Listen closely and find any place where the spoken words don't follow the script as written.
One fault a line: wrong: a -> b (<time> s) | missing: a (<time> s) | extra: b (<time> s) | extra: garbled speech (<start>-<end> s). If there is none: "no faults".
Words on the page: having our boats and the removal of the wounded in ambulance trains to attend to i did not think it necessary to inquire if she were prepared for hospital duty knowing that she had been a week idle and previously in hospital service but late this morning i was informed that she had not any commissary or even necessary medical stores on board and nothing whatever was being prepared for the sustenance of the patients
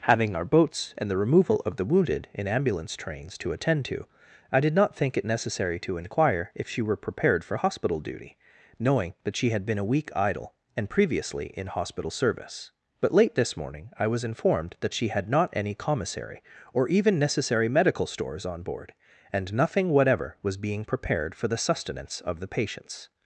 no faults